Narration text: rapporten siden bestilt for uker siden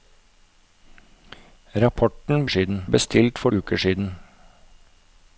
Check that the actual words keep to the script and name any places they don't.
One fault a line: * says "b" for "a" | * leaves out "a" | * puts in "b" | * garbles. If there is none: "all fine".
all fine